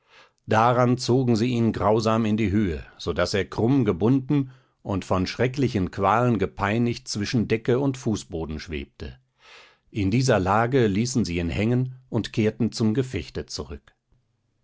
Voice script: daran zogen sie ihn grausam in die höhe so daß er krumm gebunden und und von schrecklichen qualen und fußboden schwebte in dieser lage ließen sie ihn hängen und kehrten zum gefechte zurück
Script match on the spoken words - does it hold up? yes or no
no